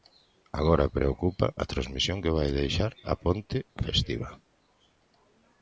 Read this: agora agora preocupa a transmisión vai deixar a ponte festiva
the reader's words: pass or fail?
fail